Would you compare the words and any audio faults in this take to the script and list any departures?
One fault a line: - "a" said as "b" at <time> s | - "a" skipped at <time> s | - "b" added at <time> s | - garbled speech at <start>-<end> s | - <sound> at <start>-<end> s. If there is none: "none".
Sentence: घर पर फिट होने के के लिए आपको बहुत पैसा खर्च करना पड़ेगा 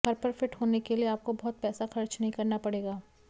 - "के" skipped at 0.9 s
- "नहीं" added at 2.2 s